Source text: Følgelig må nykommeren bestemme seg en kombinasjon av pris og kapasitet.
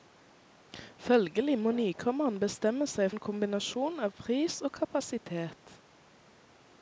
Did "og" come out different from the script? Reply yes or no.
no